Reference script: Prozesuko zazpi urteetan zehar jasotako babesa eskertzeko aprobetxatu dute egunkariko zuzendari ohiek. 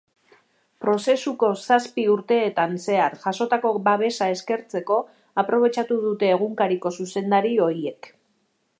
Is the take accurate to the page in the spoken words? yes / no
yes